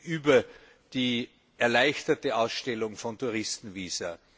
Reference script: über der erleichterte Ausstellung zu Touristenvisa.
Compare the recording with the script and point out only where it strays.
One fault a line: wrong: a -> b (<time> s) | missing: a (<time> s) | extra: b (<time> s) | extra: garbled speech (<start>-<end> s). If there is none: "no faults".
wrong: der -> die (0.9 s)
wrong: zu -> von (3.0 s)